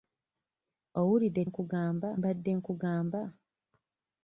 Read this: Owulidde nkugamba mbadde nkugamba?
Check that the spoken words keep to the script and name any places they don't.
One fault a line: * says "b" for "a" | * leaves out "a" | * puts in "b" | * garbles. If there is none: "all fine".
all fine